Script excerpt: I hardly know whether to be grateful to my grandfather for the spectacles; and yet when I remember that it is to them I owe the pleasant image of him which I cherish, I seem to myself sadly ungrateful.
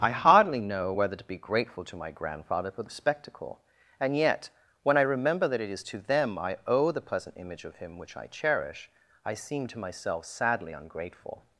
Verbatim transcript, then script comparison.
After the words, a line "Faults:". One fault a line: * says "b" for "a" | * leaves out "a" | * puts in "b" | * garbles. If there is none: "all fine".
I hardly know whether to be grateful to my grandfather for the spectacle; and yet when I remember that it is to them I owe the pleasant image of him which I cherish, I seem to myself sadly ungrateful.
Faults:
* says "spectacle" for "spectacles"